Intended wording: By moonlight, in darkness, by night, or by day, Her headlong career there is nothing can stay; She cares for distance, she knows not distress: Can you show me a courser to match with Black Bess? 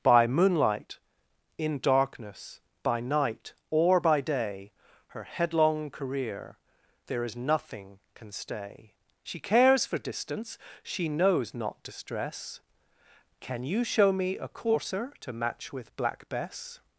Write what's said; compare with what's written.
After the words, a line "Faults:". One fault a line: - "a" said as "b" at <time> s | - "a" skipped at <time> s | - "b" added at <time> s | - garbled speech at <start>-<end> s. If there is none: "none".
By moonlight, in darkness, by night, or by day, Her headlong career there is nothing can stay; She cares for distance, she knows not distress: Can you show me a courser to match with Black Bess?
Faults:
none